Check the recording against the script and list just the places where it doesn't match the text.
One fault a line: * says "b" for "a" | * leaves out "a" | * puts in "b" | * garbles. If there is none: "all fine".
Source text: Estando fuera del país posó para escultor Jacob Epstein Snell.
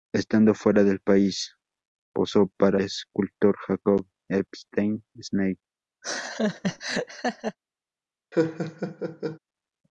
all fine